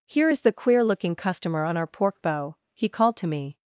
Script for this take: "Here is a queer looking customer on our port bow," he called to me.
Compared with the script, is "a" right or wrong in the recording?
wrong